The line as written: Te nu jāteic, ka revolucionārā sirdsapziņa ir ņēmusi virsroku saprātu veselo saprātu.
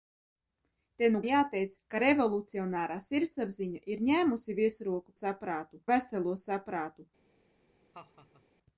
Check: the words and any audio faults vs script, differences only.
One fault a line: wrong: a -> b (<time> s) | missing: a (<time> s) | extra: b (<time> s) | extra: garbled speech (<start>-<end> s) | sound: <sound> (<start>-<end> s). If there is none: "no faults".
sound: laugh (7.9-8.4 s)